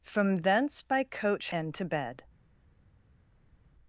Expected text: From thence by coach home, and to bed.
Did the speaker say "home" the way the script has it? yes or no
no